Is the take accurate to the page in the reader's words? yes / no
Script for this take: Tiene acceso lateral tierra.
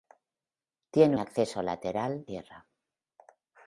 yes